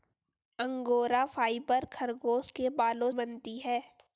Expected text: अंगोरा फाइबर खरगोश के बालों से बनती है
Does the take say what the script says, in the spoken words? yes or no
no